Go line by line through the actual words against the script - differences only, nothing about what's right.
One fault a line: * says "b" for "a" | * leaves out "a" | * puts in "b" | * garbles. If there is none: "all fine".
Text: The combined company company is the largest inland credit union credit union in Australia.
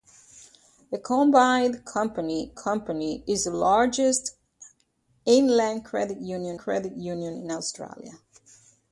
all fine